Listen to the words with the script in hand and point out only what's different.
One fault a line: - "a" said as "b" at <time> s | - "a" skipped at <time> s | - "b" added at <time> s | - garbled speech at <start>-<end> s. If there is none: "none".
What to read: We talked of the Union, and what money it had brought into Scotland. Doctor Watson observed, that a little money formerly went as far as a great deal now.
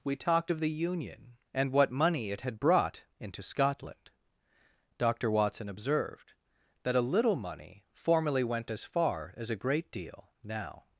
none